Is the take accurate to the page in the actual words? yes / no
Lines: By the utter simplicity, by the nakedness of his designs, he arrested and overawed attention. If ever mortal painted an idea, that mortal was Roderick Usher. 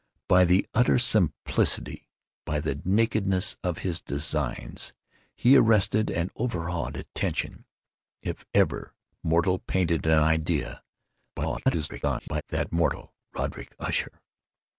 no